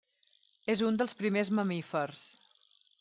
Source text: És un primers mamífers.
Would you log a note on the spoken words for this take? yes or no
yes